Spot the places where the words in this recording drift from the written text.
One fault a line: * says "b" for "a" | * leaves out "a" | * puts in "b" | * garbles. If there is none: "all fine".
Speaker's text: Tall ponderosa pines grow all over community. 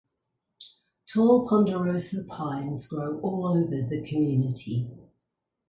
* puts in "the"